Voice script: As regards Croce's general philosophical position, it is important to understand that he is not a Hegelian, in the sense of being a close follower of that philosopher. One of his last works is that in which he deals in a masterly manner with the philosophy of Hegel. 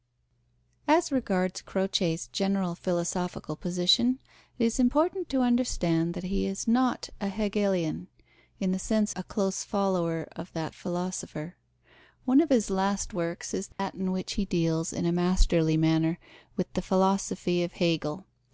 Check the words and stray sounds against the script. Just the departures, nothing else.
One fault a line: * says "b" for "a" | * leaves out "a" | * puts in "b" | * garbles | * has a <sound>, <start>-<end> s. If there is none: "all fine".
* leaves out "of being"
* has a dropout, 13.7-13.8 s